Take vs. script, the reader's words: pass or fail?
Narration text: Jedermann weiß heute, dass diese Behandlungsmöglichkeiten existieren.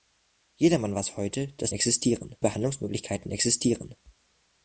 fail